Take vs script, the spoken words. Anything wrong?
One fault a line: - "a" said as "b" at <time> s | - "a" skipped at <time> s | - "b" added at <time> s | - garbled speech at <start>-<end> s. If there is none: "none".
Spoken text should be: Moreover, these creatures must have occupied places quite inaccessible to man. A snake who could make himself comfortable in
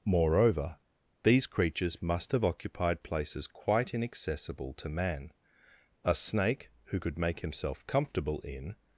none